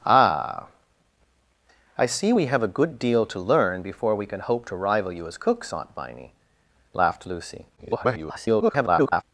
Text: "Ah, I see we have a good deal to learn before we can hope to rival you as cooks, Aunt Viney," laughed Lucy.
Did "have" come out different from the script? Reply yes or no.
no